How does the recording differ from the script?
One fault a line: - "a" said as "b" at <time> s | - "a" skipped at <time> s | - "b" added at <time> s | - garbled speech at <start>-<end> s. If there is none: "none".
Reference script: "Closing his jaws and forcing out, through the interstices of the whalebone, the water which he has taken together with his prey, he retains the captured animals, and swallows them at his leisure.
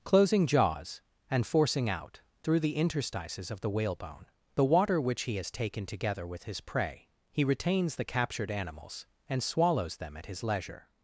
- "his" skipped at 0.5 s